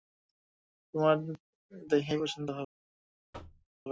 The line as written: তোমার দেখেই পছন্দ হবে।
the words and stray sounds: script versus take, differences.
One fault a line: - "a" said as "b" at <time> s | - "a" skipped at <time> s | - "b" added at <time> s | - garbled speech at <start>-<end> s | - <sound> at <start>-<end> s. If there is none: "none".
- thud at 3.3-3.7 s